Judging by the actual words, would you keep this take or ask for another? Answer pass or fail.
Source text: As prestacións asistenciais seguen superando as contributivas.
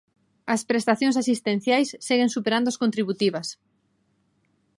pass